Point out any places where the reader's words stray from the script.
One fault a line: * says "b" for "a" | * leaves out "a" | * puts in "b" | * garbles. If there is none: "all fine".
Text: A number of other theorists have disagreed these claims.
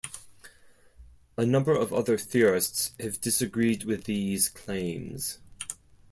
* puts in "with"